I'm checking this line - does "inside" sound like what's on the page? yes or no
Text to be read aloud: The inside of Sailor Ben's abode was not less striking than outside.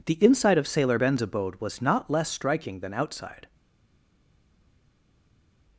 yes